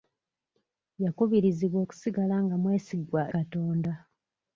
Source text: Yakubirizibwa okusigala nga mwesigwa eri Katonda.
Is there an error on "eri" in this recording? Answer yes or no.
yes